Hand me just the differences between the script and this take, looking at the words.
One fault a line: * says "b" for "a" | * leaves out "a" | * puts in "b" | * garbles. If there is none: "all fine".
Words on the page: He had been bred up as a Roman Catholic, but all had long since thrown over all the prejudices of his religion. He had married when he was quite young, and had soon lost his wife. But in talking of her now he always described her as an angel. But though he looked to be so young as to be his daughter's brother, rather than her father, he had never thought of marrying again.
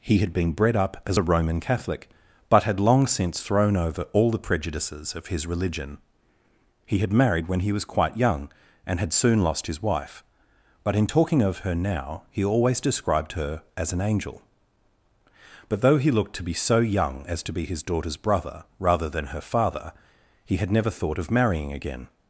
* leaves out "all"